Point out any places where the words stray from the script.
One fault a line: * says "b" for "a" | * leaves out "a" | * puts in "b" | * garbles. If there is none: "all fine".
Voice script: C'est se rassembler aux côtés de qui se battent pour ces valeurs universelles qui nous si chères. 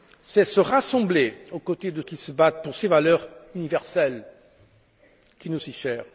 all fine